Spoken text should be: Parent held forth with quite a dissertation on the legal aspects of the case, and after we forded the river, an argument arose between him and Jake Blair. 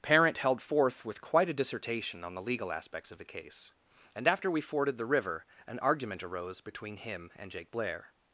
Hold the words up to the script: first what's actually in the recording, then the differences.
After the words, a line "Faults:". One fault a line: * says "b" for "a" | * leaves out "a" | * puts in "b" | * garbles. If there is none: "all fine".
Parent held forth with quite a dissertation on the legal aspects of the case, and after we forded the river, an argument arose between him and Jake Blair.
Faults:
all fine